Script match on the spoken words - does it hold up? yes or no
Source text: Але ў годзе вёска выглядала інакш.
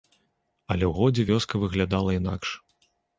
yes